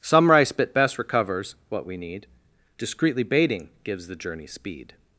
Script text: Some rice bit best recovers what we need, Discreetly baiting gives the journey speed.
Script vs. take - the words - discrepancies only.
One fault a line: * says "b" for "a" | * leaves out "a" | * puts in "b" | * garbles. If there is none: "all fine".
all fine